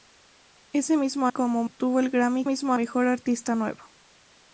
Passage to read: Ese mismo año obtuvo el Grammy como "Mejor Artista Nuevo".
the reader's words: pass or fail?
fail